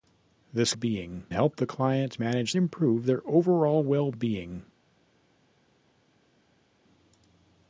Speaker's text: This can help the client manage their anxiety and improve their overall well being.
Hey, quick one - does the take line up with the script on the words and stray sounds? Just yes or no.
no